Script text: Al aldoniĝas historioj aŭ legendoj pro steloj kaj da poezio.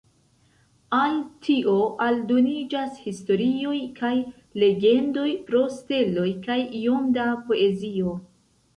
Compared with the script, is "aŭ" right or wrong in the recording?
wrong